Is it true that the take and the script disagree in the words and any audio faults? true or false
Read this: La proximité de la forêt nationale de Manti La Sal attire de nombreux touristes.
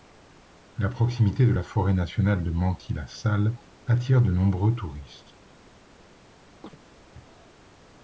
true